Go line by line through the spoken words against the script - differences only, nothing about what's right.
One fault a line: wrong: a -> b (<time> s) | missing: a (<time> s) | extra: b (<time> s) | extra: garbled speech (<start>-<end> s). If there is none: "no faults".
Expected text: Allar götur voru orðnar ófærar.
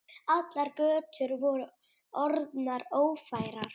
no faults